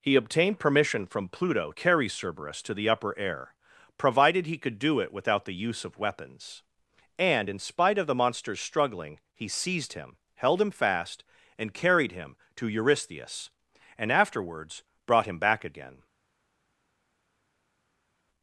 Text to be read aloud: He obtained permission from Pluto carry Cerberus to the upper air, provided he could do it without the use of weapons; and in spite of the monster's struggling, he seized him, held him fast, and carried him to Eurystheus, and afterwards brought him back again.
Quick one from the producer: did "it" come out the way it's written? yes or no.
yes